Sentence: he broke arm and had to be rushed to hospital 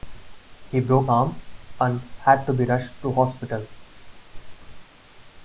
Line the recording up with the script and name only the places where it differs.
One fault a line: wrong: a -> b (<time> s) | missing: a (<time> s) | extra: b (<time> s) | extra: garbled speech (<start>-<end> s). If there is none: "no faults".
no faults